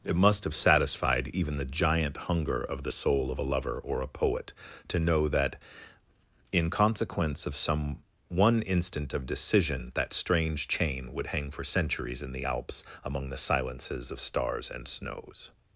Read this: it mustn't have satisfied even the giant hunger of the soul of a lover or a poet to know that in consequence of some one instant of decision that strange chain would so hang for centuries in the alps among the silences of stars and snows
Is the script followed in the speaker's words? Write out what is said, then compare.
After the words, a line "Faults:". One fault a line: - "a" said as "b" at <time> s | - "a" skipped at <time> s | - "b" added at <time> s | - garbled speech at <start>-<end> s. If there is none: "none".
it must have satisfied even the giant hunger of the soul of a lover or a poet to know that in consequence of some one instant of decision that strange chain would hang for centuries in the alps among the silences of stars and snows
Faults:
- "mustn't" said as "must" at 0.1 s
- "so" skipped at 11.3 s